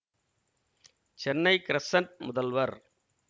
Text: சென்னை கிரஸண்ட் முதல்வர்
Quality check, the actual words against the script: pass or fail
pass